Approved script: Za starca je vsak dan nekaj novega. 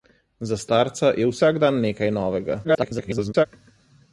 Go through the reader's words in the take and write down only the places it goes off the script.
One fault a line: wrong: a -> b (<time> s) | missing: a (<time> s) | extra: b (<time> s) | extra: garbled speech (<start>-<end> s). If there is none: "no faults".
extra: garbled speech (2.6-3.5 s)